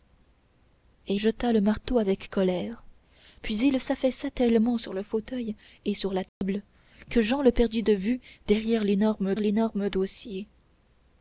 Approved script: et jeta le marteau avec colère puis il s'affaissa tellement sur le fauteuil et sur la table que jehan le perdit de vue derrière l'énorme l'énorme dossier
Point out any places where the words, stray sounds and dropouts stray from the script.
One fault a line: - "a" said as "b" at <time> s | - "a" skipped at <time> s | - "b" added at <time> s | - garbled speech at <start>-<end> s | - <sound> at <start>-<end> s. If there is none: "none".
- dropout at 6.3-6.4 s